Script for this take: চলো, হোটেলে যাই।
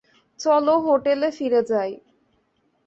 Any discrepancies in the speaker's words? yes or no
yes